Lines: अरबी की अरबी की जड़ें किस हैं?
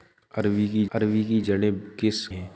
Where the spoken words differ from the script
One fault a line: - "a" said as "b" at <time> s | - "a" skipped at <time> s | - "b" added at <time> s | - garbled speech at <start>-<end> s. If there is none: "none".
none